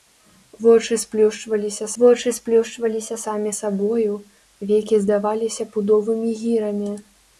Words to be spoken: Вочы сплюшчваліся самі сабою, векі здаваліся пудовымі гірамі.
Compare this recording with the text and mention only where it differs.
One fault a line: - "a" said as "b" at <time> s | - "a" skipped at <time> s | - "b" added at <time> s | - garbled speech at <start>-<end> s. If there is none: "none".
- "вочы сплюшчваліся" added at 2.0 s